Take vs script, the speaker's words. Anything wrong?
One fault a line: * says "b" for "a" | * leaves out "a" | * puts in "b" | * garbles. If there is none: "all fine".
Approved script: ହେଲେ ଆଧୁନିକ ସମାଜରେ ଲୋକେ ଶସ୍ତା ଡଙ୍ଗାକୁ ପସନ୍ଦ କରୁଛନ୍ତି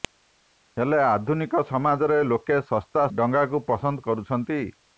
all fine